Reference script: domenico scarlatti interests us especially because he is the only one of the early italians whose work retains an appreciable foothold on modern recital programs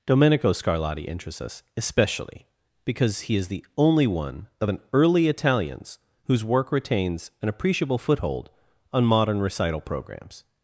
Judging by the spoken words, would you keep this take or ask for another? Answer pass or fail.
fail